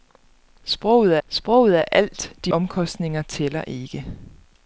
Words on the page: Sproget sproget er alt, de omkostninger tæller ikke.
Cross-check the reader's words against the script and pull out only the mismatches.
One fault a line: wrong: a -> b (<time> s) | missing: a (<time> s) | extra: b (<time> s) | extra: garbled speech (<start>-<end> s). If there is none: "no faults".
no faults